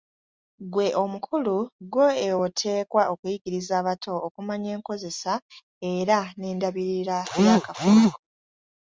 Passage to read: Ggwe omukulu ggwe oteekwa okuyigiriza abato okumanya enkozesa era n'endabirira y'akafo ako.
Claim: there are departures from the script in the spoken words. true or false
false